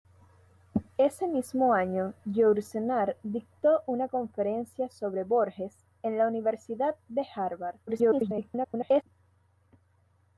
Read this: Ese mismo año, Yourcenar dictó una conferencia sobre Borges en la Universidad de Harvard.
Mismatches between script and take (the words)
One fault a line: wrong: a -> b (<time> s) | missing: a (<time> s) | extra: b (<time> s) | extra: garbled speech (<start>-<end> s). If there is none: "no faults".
extra: garbled speech (7.9-9.0 s)